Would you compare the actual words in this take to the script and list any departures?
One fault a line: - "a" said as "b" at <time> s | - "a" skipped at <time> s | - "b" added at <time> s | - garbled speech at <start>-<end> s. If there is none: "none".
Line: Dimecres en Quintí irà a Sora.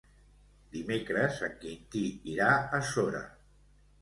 none